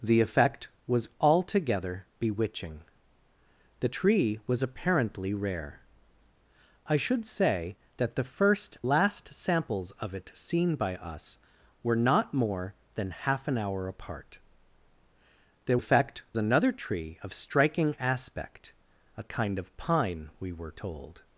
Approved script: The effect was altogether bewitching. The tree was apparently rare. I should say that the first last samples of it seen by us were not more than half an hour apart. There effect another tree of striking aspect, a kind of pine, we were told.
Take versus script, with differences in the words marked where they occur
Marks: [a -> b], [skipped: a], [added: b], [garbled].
The effect was altogether bewitching. The tree was apparently rare. I should say that the first last samples of it seen by us were not more than half an hour apart. There effect another tree of striking aspect, a kind of pine, we were told.